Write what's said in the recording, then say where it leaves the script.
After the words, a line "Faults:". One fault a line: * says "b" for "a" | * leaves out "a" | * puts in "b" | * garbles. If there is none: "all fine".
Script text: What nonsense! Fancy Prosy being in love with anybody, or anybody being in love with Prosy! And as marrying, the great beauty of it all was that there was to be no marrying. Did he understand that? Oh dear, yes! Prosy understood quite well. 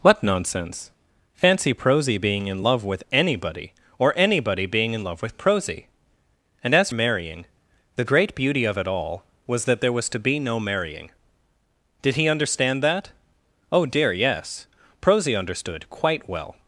What nonsense! Fancy Prosy being in love with anybody, or anybody being in love with Prosy! And as marrying, the great beauty of it all was that there was to be no marrying. Did he understand that? Oh dear, yes! Prosy understood quite well.
Faults:
all fine